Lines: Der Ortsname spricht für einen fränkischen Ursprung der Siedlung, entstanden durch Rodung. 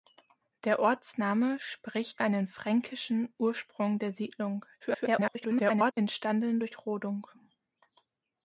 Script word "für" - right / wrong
wrong